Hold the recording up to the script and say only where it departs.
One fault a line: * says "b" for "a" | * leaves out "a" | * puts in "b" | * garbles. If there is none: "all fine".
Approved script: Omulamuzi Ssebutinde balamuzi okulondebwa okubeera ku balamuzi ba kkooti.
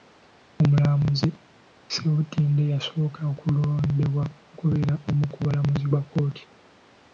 * says "yasooka" for "balamuzi"
* puts in "omu"